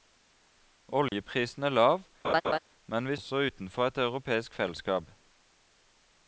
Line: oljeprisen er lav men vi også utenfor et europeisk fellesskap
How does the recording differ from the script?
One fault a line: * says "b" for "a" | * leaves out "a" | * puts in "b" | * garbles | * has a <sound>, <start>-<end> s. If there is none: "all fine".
* has a dropout, 1.1-1.1 s
* has a laugh, 2.2-2.6 s